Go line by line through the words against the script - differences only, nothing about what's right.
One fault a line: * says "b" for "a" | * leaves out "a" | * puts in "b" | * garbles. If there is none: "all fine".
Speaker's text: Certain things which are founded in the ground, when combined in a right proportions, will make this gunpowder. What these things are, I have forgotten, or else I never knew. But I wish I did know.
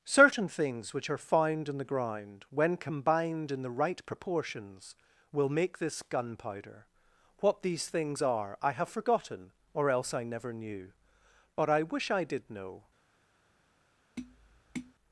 * says "found" for "founded"
* says "the" for "a"